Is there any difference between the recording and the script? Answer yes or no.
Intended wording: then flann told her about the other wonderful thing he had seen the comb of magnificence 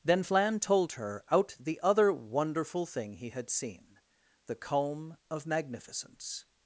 yes